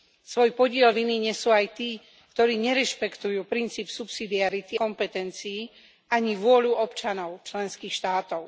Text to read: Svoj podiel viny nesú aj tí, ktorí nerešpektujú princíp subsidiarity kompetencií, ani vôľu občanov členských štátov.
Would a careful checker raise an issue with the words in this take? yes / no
no